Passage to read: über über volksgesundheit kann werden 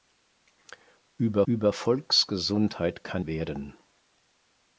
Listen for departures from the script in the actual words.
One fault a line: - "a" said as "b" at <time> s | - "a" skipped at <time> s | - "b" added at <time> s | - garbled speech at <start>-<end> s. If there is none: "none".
none